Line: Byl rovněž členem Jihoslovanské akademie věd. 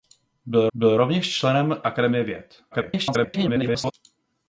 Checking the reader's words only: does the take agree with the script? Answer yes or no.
no